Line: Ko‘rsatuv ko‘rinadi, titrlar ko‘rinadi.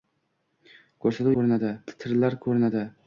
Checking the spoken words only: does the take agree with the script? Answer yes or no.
yes